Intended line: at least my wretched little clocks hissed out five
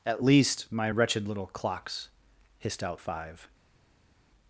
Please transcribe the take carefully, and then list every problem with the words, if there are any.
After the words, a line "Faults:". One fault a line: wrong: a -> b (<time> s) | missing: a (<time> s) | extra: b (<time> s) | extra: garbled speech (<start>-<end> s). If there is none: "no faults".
at least my wretched little clocks hissed out five
Faults:
no faults